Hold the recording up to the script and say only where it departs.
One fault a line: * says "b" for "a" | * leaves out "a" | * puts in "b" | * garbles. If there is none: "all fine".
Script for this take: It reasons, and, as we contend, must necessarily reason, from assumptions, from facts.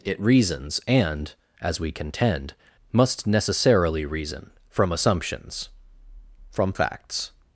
all fine